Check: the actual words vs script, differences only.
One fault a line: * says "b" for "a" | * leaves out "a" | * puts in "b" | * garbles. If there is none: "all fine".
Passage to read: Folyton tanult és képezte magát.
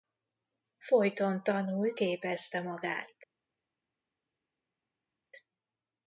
* leaves out "és"